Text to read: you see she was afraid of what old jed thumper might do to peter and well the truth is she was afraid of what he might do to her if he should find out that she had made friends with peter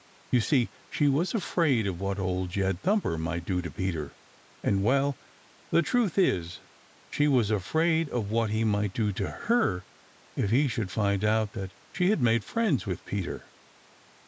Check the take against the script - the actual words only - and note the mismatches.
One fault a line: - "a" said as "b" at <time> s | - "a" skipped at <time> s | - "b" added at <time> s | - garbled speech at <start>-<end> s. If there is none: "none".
none